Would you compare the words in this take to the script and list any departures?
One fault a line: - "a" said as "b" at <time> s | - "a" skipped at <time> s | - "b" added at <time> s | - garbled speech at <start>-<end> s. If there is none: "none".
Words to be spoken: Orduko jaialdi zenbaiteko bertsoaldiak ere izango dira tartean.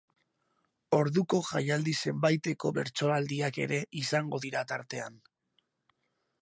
none